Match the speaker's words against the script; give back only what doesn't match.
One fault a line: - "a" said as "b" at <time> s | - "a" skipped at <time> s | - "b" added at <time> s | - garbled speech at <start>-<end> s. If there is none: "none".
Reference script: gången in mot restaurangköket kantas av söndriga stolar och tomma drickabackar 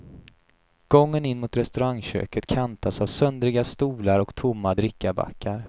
none